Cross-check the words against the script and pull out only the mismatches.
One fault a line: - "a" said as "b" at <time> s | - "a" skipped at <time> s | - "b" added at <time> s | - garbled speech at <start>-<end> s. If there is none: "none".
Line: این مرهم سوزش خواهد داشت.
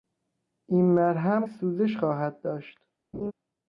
none